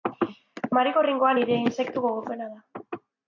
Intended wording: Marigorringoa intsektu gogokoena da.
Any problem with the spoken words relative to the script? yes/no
yes